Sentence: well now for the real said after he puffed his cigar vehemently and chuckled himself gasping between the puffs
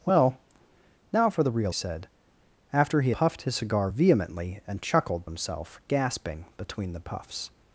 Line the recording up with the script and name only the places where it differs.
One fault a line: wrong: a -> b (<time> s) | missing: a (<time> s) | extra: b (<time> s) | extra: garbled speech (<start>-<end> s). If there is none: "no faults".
no faults